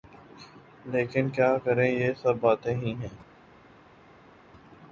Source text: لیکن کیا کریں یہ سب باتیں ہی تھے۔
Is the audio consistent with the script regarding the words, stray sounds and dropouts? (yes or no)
no